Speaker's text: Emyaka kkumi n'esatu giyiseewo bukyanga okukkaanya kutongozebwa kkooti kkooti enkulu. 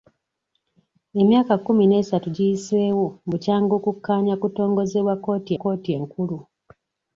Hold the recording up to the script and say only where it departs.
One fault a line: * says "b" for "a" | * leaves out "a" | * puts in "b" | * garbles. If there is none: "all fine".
all fine